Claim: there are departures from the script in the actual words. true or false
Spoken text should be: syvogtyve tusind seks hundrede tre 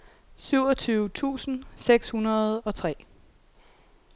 true